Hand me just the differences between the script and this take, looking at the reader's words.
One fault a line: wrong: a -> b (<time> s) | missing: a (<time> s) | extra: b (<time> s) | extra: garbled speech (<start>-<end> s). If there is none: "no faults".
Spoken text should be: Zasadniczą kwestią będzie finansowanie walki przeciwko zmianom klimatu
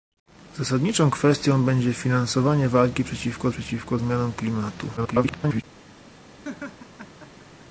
extra: przeciwko (3.5 s)
extra: garbled speech (5.0-5.6 s)